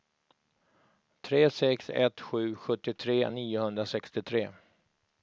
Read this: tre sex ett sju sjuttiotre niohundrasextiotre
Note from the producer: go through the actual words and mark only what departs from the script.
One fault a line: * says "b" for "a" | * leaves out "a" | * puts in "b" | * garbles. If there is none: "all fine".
all fine